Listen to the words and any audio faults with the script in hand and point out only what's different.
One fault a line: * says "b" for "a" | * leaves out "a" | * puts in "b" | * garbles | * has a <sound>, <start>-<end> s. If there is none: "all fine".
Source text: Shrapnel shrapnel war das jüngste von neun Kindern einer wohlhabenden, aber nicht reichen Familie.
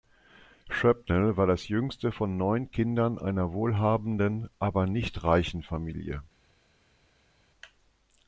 * leaves out "shrapnel"